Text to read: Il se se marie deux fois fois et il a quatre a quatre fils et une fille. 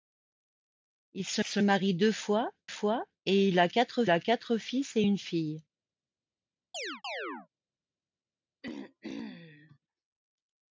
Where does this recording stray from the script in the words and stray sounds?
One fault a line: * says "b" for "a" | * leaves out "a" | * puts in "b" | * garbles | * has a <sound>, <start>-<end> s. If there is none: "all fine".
* has a chirp, 6.7-7.5 s
* has a throat clearing, 8.6-9.8 s